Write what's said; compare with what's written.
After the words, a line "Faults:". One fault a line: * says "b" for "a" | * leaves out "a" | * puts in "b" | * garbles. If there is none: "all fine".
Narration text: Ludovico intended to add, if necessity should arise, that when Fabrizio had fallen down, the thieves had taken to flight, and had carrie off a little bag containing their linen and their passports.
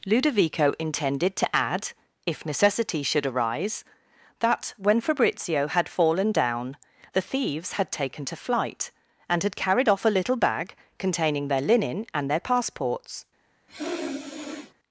Ludovico intended to add, if necessity should arise, that when Fabrizio had fallen down, the thieves had taken to flight, and had carried off a little bag containing their linen and their passports.
Faults:
* says "carried" for "carrie"